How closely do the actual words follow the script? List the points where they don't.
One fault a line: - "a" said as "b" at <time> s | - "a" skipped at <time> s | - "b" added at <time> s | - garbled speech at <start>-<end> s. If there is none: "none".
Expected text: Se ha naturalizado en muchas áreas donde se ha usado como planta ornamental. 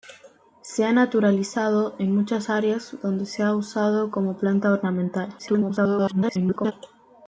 - garbled speech at 5.4-6.7 s